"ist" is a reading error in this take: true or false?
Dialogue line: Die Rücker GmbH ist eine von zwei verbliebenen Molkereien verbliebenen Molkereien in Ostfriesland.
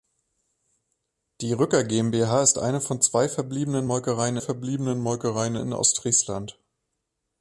false